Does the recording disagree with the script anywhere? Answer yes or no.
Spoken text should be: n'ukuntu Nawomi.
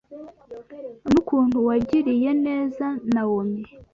yes